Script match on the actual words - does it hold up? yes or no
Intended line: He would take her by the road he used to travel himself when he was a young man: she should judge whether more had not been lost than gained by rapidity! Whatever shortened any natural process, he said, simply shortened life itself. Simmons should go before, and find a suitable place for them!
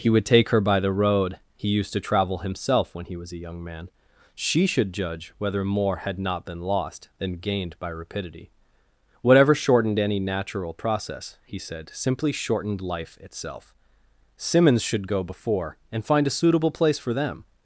yes